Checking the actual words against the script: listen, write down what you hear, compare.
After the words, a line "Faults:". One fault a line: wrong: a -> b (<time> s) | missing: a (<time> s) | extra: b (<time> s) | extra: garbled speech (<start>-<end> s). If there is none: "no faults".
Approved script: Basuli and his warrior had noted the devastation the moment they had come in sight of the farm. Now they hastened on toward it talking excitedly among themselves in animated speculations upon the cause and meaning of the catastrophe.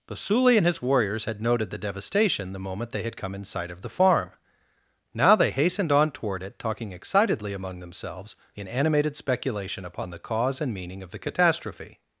Basuli and his warriors had noted the devastation the moment they had come in sight of the farm. Now they hastened on toward it talking excitedly among themselves in animated speculation upon the cause and meaning of the catastrophe.
Faults:
wrong: warrior -> warriors (0.8 s)
wrong: speculations -> speculation (9.2 s)